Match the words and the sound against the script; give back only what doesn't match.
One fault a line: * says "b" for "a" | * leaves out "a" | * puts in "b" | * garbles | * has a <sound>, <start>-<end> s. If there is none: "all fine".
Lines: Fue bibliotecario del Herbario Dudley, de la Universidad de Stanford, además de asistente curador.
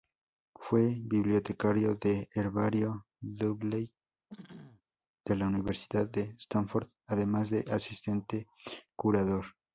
* has a throat clearing, 4.3-4.8 s